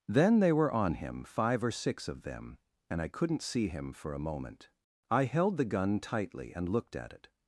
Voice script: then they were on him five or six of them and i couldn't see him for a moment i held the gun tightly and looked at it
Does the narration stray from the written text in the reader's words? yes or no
no